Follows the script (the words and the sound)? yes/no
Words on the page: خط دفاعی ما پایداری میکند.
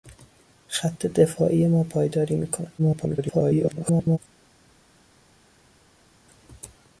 no